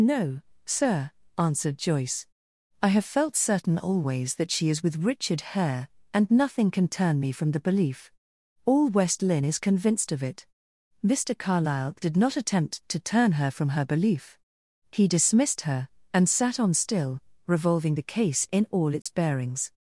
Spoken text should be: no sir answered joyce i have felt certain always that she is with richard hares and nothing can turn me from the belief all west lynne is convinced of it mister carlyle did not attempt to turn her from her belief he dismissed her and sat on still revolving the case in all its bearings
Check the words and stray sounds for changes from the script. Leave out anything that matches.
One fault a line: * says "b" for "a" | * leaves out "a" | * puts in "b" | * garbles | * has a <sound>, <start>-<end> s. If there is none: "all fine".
* says "hare" for "hares"
* has a dropout, 19.0-19.1 s